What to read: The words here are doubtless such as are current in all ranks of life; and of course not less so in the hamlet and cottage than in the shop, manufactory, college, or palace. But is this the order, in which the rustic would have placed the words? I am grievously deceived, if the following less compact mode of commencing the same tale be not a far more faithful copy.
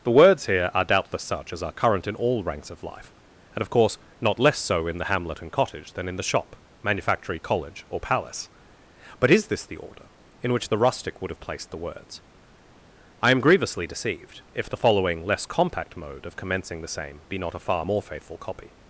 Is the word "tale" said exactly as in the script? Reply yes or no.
no